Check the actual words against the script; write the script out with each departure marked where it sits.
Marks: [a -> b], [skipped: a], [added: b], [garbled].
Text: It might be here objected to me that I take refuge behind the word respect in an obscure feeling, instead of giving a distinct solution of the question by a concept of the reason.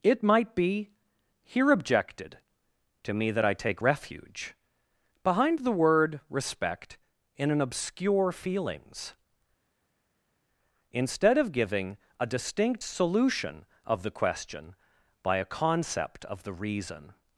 It might be here objected to me that I take refuge behind the word respect in an obscure [feeling, -> feelings] instead of giving a distinct solution of the question by a concept of the reason.